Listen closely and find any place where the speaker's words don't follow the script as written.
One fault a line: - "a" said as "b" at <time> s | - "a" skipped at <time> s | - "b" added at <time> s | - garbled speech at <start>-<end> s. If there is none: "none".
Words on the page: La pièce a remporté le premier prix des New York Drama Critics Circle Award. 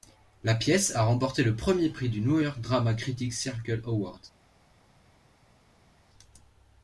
- "des" said as "du" at 2.1 s